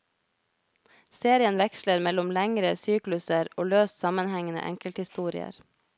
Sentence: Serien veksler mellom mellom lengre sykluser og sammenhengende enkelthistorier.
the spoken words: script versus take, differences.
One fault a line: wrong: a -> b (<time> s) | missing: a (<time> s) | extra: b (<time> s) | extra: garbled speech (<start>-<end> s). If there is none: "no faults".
missing: mellom (2.3 s)
extra: løst (3.7 s)